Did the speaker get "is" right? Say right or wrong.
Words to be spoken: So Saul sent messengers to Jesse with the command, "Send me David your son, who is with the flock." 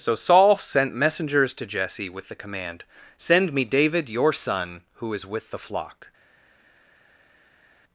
right